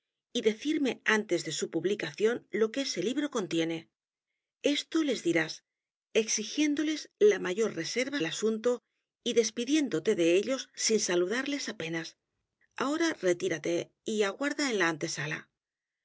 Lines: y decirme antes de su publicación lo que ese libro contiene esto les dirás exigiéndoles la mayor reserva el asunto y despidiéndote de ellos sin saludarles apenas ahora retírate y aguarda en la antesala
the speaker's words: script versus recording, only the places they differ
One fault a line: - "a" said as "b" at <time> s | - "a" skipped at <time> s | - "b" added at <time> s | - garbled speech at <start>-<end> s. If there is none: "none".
none